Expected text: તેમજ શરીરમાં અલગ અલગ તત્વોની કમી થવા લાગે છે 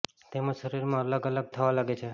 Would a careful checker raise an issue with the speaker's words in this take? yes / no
yes